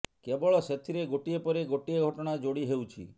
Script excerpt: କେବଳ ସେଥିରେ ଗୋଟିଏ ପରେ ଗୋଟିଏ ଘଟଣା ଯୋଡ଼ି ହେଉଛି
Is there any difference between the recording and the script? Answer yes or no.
no